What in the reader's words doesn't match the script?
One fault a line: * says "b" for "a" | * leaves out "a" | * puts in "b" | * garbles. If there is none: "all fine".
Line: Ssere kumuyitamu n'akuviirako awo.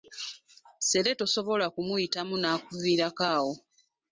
* puts in "tosobola"